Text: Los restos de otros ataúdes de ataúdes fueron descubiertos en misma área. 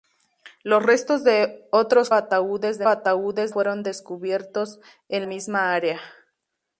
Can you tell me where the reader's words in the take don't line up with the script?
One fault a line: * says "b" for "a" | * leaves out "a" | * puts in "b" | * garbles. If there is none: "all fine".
all fine